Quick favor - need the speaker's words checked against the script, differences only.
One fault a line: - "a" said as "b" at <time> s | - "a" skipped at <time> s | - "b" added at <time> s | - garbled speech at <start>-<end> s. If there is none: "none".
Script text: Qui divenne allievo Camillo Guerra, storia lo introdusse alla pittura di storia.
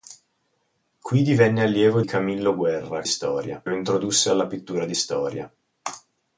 none